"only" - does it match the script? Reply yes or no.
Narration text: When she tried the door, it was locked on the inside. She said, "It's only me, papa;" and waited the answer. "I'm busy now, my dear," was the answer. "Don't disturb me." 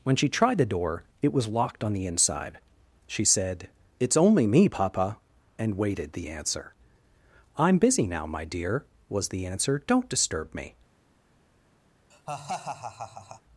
yes